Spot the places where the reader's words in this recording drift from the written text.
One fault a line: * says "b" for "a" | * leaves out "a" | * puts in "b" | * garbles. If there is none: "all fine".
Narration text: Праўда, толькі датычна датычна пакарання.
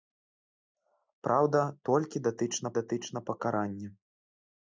all fine